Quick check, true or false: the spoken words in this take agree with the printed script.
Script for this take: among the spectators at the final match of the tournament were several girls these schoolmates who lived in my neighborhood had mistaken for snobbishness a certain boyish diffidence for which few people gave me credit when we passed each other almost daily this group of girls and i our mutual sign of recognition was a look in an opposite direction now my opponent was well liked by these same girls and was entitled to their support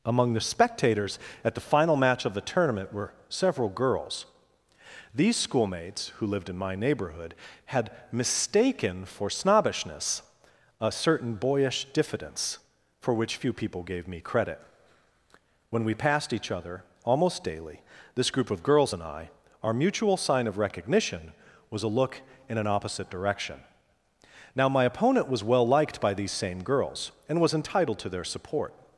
true